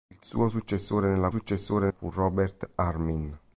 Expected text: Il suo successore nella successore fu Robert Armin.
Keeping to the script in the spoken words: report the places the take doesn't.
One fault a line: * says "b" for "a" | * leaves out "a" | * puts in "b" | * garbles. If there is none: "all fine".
all fine